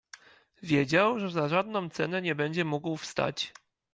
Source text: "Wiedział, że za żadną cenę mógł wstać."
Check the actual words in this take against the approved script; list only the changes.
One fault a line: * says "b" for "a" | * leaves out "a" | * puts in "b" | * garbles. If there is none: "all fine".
* puts in "nie będzie"